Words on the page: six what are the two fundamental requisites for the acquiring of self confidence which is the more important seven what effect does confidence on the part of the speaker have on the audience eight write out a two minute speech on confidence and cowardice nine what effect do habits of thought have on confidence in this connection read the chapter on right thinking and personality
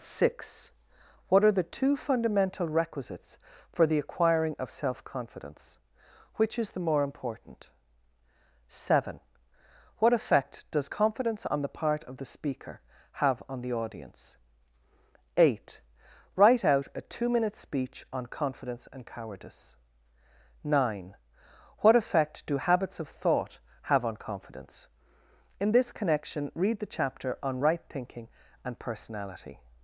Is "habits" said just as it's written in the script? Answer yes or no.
yes